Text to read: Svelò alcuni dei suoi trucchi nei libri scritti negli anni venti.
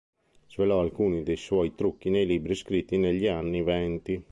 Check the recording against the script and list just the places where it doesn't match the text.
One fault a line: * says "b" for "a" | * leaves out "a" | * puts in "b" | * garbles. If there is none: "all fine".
all fine